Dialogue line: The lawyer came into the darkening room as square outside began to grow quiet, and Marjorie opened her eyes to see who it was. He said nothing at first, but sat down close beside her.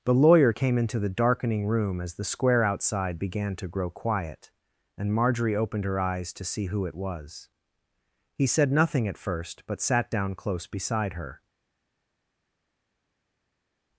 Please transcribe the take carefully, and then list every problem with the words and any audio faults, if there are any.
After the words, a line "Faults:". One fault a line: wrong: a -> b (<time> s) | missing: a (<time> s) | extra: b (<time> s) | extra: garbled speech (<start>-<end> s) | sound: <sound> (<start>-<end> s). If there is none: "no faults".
The lawyer came into the darkening room as the square outside began to grow quiet, and Marjorie opened her eyes to see who it was. He said nothing at first, but sat down close beside her.
Faults:
extra: the (2.1 s)